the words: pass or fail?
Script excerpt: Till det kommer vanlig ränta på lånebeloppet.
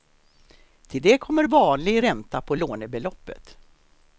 pass